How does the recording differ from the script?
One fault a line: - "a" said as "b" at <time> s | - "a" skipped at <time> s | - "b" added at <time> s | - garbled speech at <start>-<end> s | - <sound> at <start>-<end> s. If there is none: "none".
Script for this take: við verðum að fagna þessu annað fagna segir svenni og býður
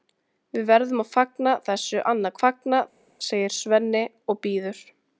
none